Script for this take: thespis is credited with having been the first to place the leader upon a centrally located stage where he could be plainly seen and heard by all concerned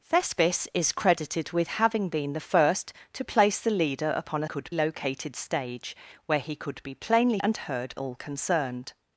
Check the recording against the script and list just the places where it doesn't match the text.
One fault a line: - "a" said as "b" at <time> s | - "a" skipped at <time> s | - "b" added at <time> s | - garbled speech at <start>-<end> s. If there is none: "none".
- "centrally" said as "could" at 4.4 s
- "seen" skipped at 7.4 s
- "by" skipped at 8.0 s